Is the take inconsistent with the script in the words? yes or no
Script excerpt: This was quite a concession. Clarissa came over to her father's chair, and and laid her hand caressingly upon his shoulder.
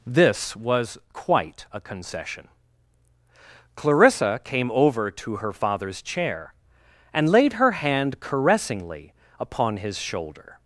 yes